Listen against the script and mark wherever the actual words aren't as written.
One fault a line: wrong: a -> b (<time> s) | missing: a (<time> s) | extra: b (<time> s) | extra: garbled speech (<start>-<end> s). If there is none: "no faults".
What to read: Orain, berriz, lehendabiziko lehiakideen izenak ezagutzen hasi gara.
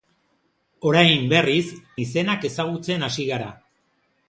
missing: lehendabiziko lehiakideen (1.7 s)